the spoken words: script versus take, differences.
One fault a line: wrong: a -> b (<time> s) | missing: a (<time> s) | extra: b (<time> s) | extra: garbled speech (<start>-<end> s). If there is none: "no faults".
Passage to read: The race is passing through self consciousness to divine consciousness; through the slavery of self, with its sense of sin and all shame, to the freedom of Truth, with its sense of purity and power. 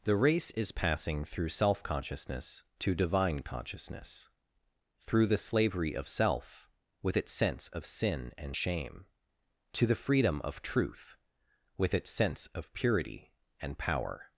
missing: all (8.6 s)